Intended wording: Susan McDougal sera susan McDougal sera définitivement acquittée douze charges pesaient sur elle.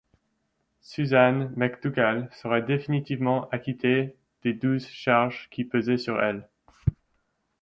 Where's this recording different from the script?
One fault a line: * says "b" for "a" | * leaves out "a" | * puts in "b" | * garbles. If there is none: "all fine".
* leaves out "susan McDougal sera"
* puts in "des"
* puts in "qui"